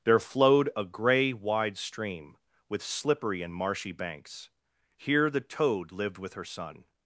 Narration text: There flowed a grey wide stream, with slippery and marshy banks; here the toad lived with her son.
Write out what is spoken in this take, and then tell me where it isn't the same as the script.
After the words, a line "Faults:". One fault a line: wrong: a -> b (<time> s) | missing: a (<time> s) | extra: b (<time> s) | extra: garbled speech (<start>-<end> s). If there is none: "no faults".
There flowed a grey wide stream, with slippery and marshy banks; here the toad lived with her son.
Faults:
no faults